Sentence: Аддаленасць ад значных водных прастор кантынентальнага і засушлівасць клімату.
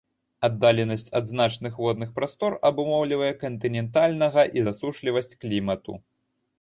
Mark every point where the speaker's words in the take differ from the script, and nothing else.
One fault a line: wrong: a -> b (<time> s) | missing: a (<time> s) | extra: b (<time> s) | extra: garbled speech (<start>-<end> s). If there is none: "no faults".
extra: абумоўлівае (2.7 s)